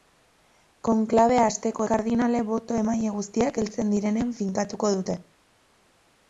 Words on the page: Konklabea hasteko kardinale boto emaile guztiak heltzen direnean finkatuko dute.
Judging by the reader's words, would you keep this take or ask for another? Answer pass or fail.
pass